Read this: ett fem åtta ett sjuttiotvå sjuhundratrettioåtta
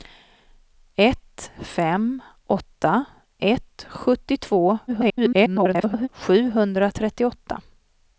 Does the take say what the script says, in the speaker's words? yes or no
no